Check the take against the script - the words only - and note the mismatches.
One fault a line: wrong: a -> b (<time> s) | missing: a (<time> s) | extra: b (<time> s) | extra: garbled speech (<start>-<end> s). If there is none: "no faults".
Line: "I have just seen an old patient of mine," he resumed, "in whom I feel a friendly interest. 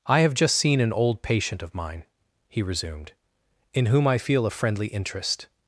no faults